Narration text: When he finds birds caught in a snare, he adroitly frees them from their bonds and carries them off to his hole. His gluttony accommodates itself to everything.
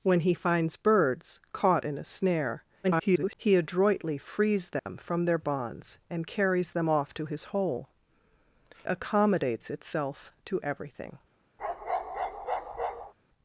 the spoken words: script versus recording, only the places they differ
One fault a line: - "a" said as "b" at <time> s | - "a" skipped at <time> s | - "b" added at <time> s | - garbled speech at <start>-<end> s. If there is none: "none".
- garbled speech at 2.8-3.3 s
- "His gluttony" skipped at 7.9 s